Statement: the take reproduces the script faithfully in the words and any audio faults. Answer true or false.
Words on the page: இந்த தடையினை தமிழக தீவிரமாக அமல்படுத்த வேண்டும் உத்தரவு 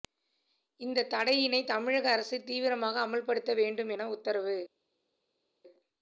false